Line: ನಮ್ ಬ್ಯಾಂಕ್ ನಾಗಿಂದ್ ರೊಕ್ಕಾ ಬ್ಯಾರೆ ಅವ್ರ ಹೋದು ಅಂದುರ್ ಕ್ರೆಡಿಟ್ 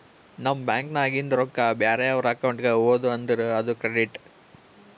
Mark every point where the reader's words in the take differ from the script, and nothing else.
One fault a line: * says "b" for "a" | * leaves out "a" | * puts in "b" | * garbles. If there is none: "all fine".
* puts in "ಅಕೌಂಟ್ಗ"
* puts in "ಅದು"